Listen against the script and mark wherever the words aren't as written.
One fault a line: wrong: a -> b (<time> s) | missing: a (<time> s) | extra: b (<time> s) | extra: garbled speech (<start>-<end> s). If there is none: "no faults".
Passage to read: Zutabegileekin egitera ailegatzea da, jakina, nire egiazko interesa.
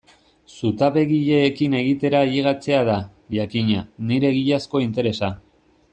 no faults